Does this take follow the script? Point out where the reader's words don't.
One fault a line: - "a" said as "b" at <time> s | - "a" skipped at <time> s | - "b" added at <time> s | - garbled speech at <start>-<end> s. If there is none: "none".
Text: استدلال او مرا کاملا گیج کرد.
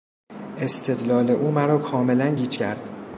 none